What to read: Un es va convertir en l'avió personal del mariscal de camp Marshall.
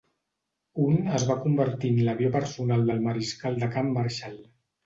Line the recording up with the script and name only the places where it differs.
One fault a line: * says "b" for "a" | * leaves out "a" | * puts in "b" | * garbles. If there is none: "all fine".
all fine